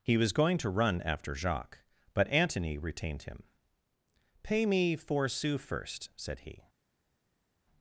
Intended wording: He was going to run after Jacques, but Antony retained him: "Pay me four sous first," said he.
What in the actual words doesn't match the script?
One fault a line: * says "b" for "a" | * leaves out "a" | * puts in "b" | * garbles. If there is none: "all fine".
all fine